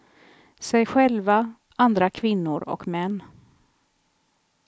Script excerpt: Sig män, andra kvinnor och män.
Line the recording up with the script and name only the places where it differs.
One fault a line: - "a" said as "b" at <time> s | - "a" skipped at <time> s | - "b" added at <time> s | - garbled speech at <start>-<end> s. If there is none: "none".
- "män" said as "själva" at 0.8 s